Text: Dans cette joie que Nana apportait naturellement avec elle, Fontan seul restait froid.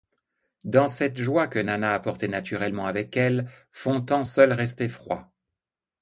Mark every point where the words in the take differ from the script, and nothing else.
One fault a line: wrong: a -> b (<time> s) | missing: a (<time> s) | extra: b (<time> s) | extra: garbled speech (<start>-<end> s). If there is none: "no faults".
no faults